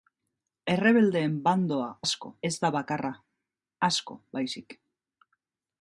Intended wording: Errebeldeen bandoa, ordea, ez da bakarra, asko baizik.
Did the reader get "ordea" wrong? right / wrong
wrong